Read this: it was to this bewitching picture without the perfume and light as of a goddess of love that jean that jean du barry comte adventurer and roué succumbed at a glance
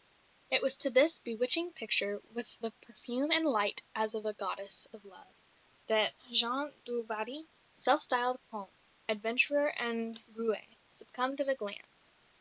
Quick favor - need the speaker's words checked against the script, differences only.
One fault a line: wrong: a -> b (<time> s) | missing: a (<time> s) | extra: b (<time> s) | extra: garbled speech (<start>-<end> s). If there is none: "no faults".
wrong: without -> with (2.2 s)
wrong: that jean du barry -> du barry self styled (6.9 s)